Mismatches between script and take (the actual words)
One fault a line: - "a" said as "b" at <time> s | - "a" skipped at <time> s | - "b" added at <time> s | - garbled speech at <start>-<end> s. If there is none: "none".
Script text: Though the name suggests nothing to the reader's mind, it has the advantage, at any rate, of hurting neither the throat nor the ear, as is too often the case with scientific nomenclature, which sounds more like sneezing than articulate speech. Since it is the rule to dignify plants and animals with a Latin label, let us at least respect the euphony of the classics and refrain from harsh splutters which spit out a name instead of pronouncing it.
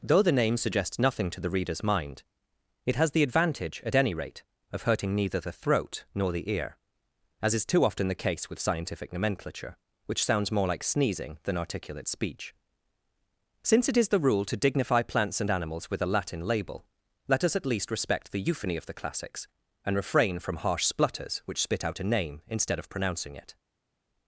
none